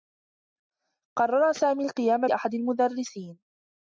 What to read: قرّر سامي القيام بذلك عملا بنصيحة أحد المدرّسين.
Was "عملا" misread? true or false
true